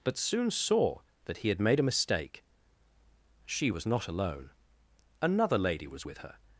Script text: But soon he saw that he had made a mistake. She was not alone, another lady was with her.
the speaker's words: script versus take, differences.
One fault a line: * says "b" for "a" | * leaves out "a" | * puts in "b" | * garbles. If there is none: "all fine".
* leaves out "he"